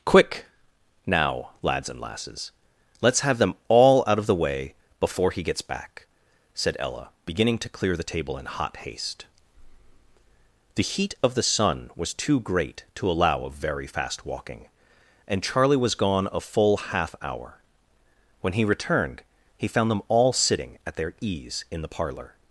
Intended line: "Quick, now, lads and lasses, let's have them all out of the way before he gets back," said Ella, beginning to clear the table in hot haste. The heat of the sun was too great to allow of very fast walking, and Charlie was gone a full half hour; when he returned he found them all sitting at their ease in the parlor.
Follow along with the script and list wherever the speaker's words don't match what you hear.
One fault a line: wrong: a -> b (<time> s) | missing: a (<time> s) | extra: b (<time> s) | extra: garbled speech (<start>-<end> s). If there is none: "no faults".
no faults